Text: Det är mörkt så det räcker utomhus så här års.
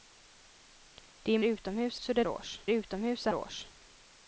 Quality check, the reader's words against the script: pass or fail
fail